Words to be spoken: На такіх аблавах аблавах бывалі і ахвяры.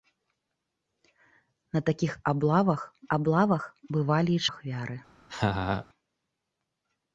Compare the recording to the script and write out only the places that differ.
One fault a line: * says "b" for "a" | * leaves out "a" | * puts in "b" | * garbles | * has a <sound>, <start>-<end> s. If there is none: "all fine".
* has a laugh, 5.3-5.9 s